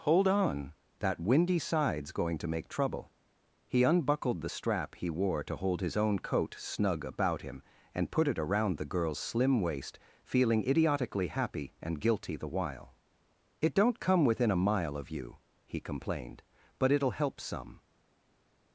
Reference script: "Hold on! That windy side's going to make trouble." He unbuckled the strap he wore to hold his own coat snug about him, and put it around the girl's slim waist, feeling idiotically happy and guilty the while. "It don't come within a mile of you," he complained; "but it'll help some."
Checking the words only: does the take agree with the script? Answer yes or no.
yes